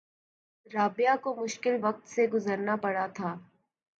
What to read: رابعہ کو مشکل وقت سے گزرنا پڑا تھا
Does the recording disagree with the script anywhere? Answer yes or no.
no